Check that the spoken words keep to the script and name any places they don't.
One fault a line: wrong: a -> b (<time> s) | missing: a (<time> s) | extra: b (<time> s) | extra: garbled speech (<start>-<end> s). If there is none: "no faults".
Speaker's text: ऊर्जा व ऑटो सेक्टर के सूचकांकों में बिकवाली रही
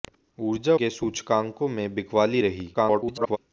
missing: व ऑटो सेक्टर (0.8 s)
extra: garbled speech (2.7-3.4 s)